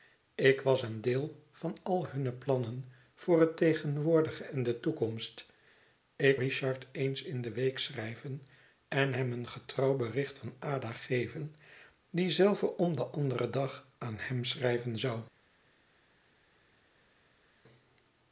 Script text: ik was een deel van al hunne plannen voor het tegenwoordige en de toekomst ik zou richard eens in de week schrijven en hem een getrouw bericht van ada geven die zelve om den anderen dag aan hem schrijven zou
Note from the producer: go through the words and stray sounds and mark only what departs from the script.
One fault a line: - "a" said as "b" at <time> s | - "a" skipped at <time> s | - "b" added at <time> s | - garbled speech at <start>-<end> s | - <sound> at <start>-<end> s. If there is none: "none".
- "zou" skipped at 6.4 s